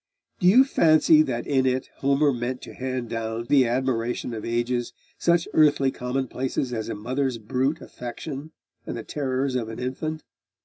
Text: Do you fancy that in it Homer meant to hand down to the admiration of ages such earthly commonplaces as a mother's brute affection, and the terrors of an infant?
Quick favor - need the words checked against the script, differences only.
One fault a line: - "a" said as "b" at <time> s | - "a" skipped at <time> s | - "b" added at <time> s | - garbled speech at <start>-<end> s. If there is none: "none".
- "to" skipped at 3.5 s